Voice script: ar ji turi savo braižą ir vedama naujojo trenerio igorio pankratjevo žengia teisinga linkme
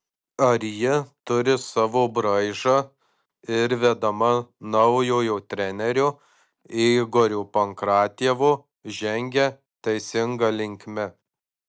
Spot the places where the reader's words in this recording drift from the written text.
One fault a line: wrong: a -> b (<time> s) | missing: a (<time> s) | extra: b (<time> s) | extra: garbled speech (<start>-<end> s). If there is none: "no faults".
no faults